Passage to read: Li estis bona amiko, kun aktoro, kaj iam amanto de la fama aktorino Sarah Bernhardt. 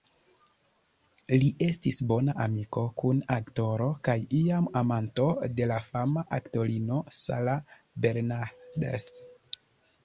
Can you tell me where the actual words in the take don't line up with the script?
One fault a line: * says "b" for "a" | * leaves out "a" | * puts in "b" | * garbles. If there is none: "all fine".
all fine